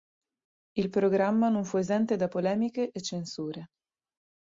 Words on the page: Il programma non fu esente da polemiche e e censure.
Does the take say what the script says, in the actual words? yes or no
no